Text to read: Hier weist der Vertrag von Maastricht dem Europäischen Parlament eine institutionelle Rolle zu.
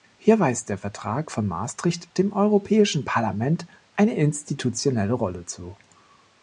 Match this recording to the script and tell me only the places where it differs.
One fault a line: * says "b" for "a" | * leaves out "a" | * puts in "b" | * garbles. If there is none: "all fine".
all fine